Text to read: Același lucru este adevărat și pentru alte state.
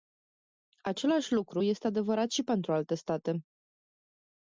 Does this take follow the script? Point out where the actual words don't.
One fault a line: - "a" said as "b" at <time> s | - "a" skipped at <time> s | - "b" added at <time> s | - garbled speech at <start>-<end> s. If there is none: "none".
none